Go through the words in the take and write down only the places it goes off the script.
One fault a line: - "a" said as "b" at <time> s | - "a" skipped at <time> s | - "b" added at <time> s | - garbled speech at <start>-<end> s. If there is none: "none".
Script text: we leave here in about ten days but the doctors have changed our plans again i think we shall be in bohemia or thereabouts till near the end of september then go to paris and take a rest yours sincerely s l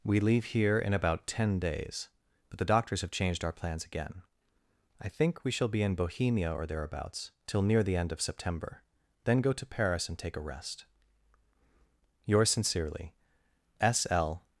none